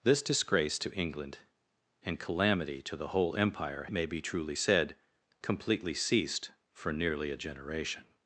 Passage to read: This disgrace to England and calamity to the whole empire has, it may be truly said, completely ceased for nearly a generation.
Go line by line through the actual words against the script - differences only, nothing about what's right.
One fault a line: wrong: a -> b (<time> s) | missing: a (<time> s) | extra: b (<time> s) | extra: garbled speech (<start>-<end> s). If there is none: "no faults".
missing: has it (3.8 s)